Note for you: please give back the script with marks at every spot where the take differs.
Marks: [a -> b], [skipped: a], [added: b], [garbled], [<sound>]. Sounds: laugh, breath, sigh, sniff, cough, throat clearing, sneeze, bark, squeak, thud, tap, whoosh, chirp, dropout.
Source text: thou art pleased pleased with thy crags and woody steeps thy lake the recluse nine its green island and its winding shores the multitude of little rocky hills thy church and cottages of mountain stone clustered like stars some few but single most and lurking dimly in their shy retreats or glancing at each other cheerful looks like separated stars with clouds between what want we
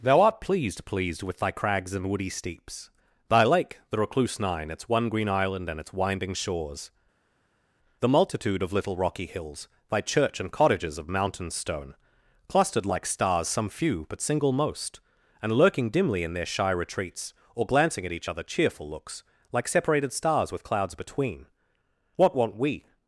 thou art pleased pleased with thy crags and woody steeps thy lake the recluse nine its [added: one] green island and its winding shores the multitude of little rocky hills thy church and cottages of mountain stone clustered like stars some few but single most and lurking dimly in their shy retreats or glancing at each other cheerful looks like separated stars with clouds between what want we